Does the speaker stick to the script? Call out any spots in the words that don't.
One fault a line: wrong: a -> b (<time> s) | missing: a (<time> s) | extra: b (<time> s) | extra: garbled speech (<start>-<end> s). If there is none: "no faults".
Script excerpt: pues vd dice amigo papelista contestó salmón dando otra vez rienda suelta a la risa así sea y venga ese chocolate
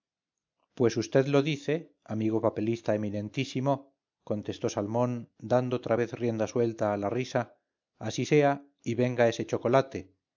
extra: lo (1.3 s)
extra: eminentísimo (3.0 s)